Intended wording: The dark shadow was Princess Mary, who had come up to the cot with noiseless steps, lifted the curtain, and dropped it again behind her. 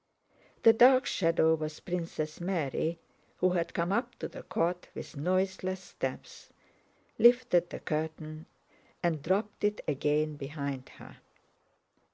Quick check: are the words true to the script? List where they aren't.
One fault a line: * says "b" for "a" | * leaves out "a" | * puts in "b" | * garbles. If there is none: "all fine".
all fine